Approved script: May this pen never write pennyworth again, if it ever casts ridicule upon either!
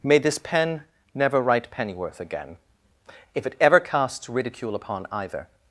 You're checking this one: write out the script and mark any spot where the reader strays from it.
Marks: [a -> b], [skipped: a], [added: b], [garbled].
May this pen never write pennyworth again, if it ever casts ridicule upon either!